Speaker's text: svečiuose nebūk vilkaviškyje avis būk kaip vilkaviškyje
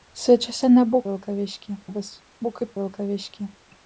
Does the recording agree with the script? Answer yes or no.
yes